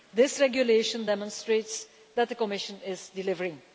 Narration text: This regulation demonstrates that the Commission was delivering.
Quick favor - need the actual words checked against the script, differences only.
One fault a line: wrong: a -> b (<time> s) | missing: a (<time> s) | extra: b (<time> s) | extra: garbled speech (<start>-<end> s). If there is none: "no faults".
wrong: was -> is (2.9 s)